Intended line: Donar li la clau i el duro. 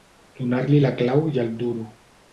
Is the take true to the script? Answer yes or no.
yes